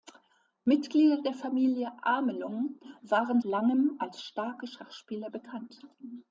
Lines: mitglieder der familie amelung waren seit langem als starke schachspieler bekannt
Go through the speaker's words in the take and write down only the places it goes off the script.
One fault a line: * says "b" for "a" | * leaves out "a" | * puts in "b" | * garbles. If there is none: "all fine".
* leaves out "seit"